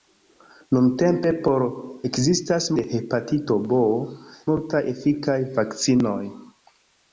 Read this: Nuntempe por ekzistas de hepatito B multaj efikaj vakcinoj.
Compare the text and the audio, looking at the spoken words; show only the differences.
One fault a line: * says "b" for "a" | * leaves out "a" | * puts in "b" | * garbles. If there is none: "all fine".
all fine